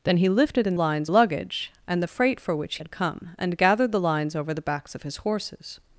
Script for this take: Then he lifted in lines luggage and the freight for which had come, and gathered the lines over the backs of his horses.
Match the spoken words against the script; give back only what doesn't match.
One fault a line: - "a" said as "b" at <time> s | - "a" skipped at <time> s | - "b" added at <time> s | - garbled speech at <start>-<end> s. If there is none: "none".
none